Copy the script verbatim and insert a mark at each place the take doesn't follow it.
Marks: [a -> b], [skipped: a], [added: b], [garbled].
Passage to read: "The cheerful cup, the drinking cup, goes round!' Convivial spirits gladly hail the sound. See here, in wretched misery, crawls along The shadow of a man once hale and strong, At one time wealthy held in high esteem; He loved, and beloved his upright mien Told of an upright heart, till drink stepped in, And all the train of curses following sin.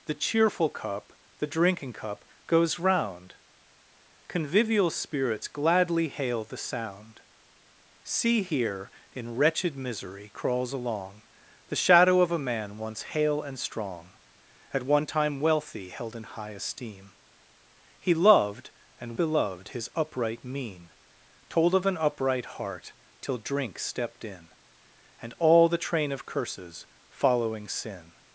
"The cheerful cup, the drinking cup, goes round!' Convivial spirits gladly hail the sound. See here, in wretched misery, crawls along The shadow of a man once hale and strong, At one time wealthy held in high esteem; He loved, and beloved his upright mien Told of an upright heart, till drink stepped in, And all the train of curses following sin.